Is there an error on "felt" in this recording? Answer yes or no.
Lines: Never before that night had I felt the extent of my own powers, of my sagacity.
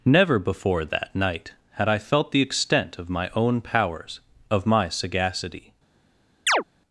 no